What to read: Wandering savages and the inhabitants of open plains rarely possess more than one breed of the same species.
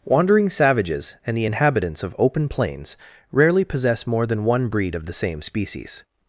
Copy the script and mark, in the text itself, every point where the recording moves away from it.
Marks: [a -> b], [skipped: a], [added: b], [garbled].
Wandering savages and the inhabitants of open plains rarely possess more than one breed of the same species.